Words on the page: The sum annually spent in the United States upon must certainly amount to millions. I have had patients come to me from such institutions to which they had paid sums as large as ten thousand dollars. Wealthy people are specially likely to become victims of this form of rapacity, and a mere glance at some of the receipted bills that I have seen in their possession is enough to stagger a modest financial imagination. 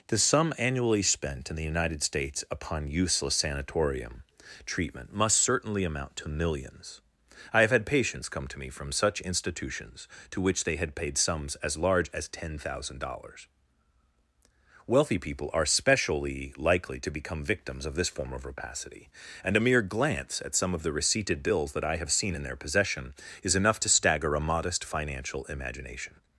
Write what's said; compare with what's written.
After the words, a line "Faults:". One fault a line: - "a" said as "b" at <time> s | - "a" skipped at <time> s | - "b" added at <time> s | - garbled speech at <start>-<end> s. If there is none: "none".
The sum annually spent in the United States upon useless sanatorium treatment must certainly amount to millions. I have had patients come to me from such institutions to which they had paid sums as large as ten thousand dollars. Wealthy people are specially likely to become victims of this form of rapacity, and a mere glance at some of the receipted bills that I have seen in their possession is enough to stagger a modest financial imagination.
Faults:
- "useless sanatorium treatment" added at 2.9 s